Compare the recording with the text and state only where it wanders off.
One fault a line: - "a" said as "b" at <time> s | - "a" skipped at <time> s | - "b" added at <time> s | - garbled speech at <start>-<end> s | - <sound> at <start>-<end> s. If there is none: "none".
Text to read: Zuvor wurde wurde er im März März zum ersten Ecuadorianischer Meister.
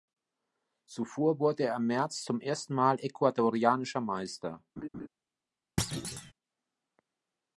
- "wurde" skipped at 1.6 s
- "März" skipped at 2.2 s
- "Mal" added at 2.7 s
- laugh at 4.8-5.1 s
- thud at 5.8-6.3 s